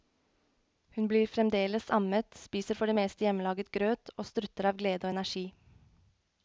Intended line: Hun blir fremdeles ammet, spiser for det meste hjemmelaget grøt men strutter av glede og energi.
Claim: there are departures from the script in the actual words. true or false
true